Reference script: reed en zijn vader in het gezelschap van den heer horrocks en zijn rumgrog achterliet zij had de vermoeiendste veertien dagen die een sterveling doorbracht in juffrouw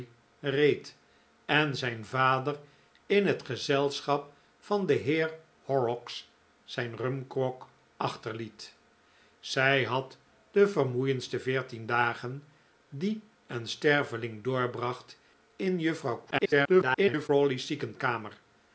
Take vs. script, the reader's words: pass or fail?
fail